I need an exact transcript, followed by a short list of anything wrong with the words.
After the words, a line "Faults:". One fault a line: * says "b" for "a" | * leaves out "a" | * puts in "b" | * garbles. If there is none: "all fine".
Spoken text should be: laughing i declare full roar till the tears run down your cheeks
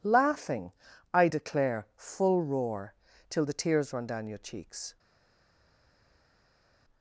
laughing i declare full roar till the tears run down your cheeks
Faults:
all fine